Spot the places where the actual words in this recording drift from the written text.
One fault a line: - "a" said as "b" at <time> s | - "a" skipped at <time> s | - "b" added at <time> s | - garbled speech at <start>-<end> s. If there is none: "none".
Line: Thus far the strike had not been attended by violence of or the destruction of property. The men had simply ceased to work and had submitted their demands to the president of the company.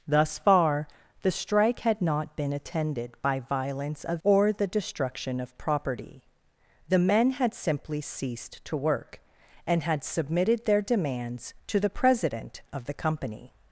none